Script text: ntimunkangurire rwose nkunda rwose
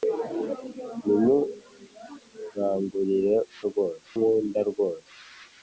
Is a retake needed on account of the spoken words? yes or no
no